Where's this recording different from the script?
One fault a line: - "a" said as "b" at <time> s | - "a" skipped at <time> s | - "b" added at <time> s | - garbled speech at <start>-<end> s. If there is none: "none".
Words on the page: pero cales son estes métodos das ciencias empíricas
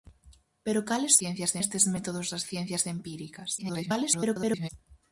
- "son" said as "ciencias" at 1.2 s
- garbled speech at 3.6-4.7 s